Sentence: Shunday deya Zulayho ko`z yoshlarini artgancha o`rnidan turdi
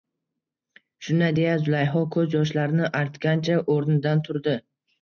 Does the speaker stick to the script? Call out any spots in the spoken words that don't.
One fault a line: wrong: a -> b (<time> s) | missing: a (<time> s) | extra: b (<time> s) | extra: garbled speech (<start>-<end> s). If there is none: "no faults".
no faults